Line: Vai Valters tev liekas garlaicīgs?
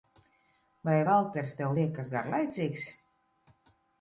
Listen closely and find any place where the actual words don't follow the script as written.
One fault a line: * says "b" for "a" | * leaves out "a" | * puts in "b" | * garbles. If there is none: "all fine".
all fine